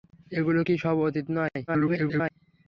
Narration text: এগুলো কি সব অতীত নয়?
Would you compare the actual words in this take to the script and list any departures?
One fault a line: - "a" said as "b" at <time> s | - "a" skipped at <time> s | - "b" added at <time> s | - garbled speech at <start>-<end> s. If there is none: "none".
- garbled speech at 1.7-2.3 s